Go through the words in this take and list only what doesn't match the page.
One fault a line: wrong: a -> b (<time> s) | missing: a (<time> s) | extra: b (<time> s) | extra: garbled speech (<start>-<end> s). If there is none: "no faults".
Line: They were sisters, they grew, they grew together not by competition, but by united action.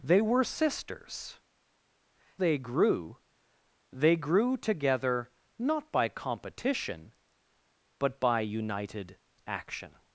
no faults